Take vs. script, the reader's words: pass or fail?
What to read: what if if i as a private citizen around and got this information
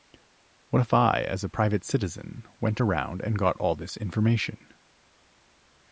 fail